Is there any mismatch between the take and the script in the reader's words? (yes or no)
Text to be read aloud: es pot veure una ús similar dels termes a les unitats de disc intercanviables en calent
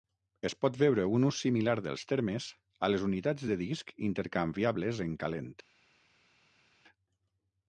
yes